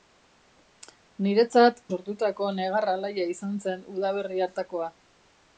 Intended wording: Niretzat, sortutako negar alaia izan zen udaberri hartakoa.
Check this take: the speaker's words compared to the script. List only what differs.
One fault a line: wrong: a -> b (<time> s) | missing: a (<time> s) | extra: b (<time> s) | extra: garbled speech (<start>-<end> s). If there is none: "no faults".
no faults